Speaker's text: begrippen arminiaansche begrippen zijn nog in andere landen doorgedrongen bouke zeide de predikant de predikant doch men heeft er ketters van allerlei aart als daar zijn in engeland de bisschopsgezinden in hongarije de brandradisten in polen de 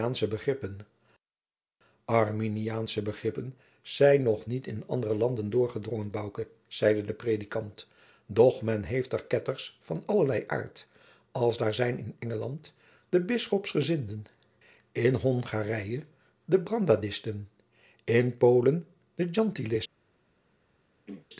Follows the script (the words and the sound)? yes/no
no